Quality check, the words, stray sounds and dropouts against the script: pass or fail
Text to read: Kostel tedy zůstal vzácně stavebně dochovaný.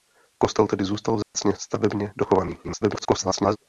fail